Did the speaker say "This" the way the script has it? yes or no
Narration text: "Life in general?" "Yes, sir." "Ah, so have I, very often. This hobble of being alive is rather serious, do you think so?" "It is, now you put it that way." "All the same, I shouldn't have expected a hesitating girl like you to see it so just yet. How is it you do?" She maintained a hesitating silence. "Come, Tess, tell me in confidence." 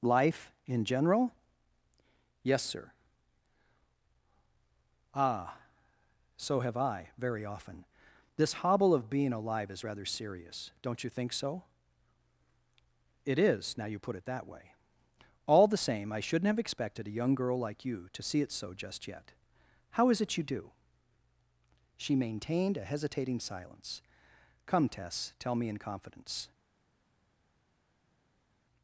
yes